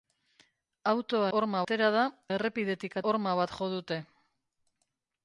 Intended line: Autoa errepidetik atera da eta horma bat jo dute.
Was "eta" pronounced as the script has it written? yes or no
no